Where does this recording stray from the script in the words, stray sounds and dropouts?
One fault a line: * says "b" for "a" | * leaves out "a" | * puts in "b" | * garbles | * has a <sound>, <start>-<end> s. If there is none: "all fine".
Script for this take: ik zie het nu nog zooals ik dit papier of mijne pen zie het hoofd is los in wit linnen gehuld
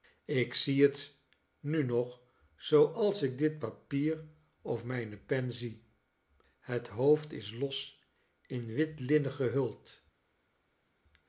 all fine